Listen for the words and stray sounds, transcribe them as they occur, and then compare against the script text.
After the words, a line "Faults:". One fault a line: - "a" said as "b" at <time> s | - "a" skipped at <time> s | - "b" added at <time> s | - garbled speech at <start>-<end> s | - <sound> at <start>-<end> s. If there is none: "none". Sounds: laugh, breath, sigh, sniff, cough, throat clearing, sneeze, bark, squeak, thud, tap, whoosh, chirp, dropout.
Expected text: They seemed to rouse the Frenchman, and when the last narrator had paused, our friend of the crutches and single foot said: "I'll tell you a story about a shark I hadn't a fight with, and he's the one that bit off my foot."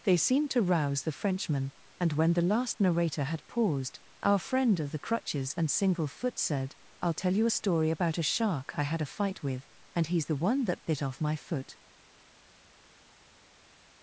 They seemed to rouse the Frenchman, and when the last narrator had paused, our friend of the crutches and single foot said: "I'll tell you a story about a shark I had a fight with, and he's the one that bit off my foot."
Faults:
- "hadn't" said as "had" at 8.8 s